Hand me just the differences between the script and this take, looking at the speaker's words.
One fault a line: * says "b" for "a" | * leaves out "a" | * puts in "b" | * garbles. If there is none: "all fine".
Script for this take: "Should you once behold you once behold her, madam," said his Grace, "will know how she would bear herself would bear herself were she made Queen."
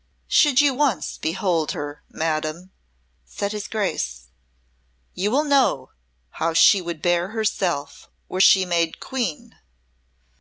* leaves out "you once behold"
* puts in "you"
* leaves out "would bear herself"